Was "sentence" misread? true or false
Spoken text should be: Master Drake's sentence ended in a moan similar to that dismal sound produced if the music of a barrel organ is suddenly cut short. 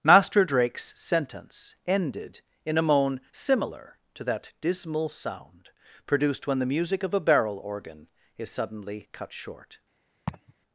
false